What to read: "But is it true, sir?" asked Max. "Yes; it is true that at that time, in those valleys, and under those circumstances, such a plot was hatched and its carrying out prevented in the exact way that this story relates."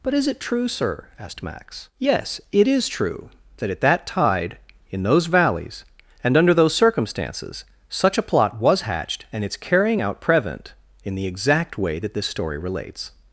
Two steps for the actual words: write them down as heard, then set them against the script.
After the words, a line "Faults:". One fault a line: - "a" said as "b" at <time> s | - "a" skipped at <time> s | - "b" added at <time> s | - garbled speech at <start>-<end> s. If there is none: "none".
"But is it true, sir?" asked Max. "Yes; it is true that at that tide, in those valleys, and under those circumstances, such a plot was hatched and its carrying out prevent in the exact way that this story relates."
Faults:
- "time" said as "tide" at 4.1 s
- "prevented" said as "prevent" at 10.2 s